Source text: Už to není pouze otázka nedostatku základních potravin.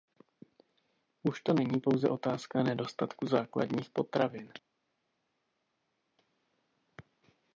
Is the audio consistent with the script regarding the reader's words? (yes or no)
yes